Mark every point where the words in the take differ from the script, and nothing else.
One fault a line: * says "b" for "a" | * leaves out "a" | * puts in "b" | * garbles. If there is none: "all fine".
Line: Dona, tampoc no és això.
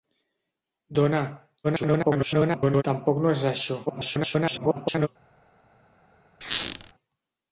* garbles
* garbles